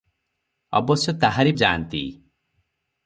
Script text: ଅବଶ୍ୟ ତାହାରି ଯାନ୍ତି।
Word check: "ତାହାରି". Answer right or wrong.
right